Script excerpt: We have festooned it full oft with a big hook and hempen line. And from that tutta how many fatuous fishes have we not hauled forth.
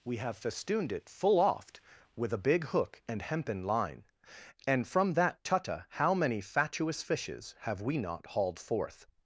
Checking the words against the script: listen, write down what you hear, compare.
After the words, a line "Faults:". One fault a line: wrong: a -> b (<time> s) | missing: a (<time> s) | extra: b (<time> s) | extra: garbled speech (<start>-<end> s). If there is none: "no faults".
We have festooned it full oft with a big hook and hempen line. And from that tutta how many fatuous fishes have we not hauled forth.
Faults:
no faults